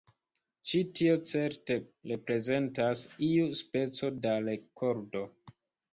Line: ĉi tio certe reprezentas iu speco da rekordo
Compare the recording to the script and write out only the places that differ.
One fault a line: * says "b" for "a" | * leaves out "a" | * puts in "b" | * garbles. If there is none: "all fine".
all fine